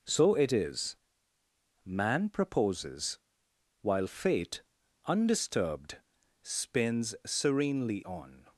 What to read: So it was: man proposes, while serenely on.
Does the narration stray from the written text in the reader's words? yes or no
yes